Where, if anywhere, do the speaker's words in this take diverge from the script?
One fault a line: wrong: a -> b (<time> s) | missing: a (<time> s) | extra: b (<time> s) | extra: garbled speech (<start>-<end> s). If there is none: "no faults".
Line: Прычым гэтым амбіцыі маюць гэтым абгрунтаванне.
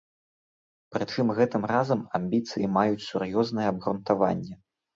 extra: разам (1.7 s)
wrong: гэтым -> сур'ёзнае (3.1 s)